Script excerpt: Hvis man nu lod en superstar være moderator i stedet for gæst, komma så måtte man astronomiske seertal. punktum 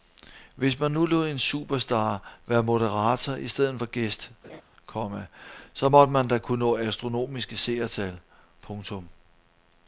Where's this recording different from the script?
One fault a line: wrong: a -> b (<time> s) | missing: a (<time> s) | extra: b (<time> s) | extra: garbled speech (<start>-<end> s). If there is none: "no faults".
extra: da kunne nå (6.3 s)